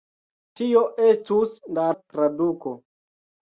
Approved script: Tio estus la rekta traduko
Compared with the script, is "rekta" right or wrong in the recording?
wrong